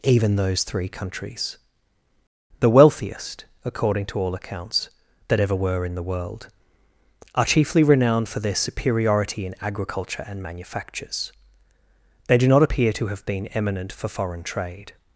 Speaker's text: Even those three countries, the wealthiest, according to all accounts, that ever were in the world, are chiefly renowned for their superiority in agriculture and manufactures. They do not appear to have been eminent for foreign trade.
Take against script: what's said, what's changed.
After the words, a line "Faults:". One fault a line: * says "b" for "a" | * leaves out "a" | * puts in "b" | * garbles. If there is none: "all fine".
Even those three countries, the wealthiest, according to all accounts, that ever were in the world, are chiefly renowned for their superiority in agriculture and manufactures. They do not appear to have been eminent for foreign trade.
Faults:
all fine